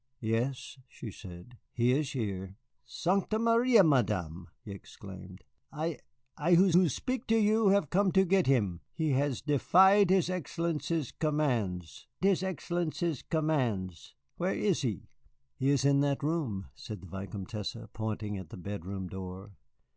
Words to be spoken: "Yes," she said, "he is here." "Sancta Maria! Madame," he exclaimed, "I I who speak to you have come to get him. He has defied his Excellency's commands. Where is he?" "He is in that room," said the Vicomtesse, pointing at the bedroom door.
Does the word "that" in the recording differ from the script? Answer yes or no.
no